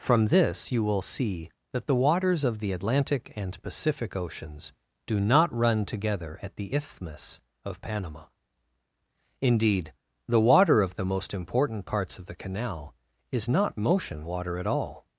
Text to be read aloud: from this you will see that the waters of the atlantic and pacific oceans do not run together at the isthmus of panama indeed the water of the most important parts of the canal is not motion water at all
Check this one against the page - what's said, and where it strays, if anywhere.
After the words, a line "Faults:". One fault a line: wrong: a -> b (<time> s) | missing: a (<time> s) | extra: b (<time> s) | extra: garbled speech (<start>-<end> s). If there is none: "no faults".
from this you will see that the waters of the atlantic and pacific oceans do not run together at the isthmus of panama indeed the water of the most important parts of the canal is not motion water at all
Faults:
no faults